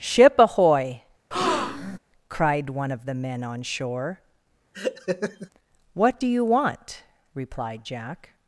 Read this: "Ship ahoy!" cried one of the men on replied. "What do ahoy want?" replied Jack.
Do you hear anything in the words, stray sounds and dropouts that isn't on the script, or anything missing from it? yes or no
yes